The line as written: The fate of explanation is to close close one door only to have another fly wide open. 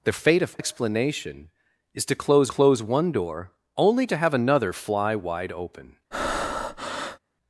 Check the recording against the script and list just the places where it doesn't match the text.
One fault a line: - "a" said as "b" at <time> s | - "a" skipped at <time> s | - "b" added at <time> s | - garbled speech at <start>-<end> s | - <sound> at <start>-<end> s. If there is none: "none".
- breath at 6.1-7.2 s